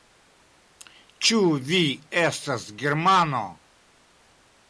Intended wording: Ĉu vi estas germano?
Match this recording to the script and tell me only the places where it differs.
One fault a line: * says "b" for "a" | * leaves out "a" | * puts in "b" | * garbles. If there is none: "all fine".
all fine